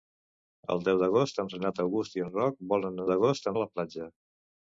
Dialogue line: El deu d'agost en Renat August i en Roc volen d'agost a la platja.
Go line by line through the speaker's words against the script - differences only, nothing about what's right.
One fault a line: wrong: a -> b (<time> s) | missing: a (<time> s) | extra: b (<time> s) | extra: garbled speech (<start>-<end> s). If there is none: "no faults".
no faults